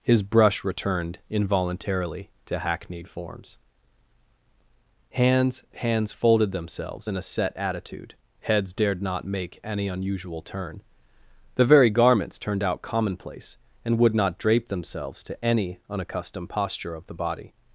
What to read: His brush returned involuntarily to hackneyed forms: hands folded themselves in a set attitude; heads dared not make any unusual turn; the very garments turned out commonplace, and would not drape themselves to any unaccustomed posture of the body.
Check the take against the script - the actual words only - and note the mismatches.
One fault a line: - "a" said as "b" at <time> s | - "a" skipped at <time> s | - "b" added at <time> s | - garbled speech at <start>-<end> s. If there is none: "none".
- "hands" added at 5.7 s